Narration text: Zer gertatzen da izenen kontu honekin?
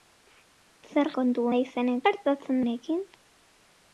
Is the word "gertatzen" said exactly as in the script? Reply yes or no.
no